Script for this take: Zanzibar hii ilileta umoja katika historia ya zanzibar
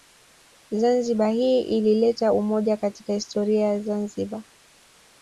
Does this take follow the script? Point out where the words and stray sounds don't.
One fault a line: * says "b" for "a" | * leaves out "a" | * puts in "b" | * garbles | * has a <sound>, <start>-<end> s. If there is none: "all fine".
all fine